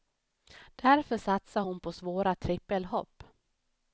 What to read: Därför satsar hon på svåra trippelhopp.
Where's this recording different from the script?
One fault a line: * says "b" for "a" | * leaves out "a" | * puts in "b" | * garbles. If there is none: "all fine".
all fine